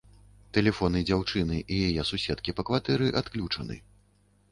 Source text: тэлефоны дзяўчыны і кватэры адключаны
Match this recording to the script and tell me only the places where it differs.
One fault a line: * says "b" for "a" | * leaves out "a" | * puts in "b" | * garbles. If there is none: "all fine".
* puts in "яе суседкі па"